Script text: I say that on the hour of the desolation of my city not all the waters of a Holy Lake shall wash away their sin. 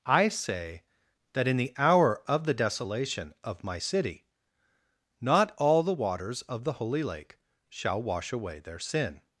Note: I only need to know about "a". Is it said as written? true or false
false